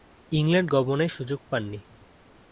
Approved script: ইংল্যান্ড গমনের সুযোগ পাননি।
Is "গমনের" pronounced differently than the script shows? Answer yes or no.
no